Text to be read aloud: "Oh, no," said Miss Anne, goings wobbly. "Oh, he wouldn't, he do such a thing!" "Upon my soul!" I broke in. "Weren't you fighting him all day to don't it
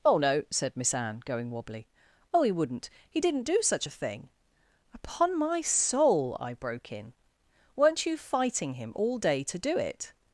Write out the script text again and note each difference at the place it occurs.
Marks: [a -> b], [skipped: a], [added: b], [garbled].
"Oh, no," said Miss Anne, [goings -> going] wobbly. "Oh, he wouldn't, he [added: didn't] do such a thing!" "Upon my soul!" I broke in. "Weren't you fighting him all day to [don't -> do] it